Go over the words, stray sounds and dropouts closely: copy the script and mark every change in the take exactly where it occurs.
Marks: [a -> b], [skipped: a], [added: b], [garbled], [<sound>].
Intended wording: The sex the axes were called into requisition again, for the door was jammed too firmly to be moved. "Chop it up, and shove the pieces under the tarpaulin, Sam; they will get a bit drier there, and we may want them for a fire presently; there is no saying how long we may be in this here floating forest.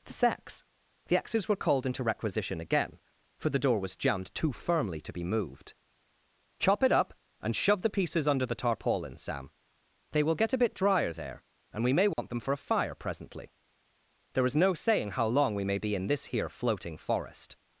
The sex the axes were called into requisition again, for the door was jammed too firmly to be moved. "Chop it up, and shove the pieces under the tarpaulin, Sam; they will get a bit drier there, and we may want [dropout] them for a fire presently; there is no saying how long we may be in this here floating forest.